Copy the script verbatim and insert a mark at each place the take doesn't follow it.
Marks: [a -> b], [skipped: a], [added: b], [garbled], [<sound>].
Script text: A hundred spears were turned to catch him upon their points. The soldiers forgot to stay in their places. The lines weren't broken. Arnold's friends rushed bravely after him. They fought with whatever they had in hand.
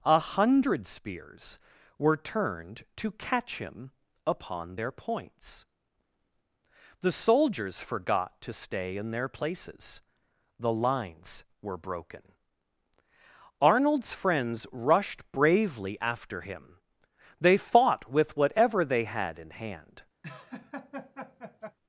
A hundred spears were turned to catch him upon their points. The soldiers forgot to stay in their places. The lines [weren't -> were] broken. Arnold's friends rushed bravely after him. They fought with whatever they had in hand. [laugh]